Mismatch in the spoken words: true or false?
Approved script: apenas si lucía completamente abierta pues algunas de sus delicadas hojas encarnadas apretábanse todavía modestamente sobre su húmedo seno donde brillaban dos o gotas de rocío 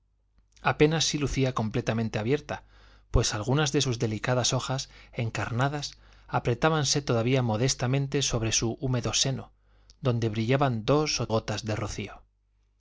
false